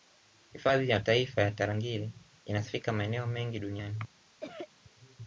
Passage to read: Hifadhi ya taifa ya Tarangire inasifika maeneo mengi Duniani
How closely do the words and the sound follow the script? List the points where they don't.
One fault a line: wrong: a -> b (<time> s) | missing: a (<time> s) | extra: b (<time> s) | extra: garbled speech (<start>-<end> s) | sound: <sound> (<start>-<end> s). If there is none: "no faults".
sound: cough (4.4-4.7 s)